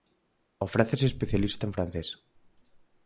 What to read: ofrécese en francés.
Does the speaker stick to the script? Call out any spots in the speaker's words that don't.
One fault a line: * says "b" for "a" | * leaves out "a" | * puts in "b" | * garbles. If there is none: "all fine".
* puts in "especialista"